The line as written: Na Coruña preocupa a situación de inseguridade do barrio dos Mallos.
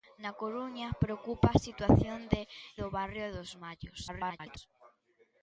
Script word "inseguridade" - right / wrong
wrong